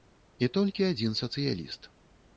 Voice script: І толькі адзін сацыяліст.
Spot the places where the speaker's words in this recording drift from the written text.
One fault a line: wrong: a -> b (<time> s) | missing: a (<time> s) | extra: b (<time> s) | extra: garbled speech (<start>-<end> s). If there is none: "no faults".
no faults